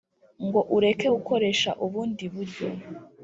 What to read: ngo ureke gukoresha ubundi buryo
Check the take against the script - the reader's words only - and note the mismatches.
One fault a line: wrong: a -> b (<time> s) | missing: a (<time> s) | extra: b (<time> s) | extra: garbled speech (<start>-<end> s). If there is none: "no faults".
no faults